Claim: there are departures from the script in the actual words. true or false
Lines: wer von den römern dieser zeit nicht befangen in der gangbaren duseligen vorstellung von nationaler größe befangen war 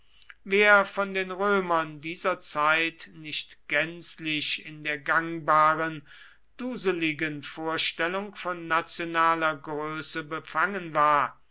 true